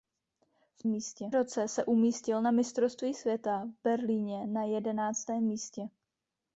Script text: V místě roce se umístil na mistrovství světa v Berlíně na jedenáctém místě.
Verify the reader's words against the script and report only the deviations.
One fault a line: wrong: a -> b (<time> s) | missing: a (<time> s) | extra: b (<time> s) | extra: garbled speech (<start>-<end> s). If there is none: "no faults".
no faults